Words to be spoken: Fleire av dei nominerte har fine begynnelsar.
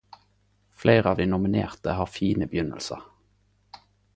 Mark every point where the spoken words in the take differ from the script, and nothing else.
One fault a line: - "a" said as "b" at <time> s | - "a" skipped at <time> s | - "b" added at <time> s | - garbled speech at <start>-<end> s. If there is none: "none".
none